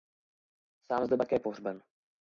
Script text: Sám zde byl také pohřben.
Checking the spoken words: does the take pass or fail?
fail